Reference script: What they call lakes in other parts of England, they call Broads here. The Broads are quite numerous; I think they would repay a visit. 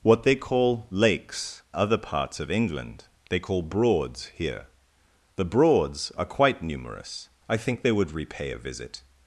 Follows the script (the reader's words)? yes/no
no